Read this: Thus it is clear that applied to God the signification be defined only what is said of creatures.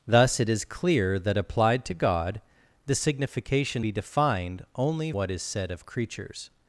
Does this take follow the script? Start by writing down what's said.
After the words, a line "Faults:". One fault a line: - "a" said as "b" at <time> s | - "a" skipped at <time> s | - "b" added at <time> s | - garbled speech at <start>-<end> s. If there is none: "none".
Thus it is clear that applied to God the signification be defined only what is said of creatures.
Faults:
none